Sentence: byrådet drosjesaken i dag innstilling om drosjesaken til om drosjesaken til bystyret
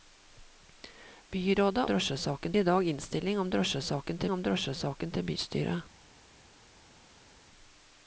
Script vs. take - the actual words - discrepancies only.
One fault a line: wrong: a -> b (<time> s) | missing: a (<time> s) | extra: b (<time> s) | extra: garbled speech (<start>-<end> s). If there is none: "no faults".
no faults